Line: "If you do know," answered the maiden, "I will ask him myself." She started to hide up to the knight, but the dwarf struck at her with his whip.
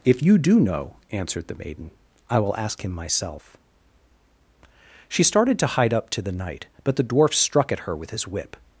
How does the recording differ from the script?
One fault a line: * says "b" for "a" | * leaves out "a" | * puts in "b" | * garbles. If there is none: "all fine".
all fine